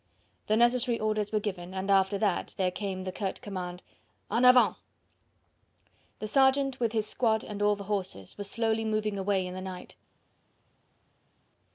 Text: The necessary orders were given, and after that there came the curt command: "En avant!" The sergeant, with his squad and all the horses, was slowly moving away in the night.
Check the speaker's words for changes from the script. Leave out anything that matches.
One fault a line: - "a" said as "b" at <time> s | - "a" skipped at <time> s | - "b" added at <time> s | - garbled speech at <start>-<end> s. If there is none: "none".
none